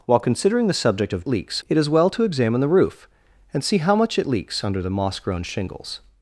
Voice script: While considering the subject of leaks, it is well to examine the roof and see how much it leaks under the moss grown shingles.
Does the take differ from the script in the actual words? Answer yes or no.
no